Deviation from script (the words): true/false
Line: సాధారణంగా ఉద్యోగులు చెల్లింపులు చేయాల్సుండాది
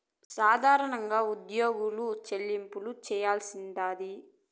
false